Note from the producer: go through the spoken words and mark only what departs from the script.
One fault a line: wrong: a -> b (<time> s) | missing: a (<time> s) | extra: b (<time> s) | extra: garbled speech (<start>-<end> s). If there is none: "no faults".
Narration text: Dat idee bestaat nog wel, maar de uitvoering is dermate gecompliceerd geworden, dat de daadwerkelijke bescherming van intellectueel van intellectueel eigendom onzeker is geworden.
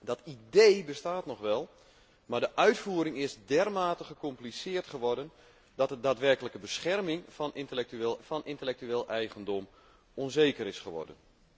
no faults